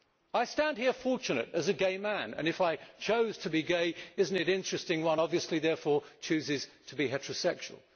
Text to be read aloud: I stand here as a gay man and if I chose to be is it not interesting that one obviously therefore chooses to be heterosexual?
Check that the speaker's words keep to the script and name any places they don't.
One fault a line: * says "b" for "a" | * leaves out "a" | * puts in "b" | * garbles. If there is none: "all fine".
* puts in "fortunate"
* puts in "gay"